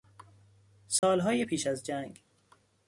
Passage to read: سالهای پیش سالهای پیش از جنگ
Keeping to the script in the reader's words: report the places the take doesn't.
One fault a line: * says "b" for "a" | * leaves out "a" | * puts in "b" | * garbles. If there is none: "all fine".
* leaves out "سالهای پیش"